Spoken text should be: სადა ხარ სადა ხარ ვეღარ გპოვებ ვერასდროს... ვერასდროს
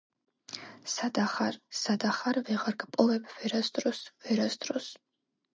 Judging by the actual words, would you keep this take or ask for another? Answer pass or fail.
pass